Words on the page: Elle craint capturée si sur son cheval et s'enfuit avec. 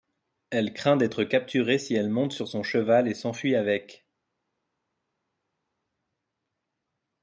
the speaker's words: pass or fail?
fail